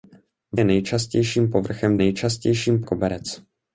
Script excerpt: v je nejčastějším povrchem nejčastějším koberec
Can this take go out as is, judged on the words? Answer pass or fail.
pass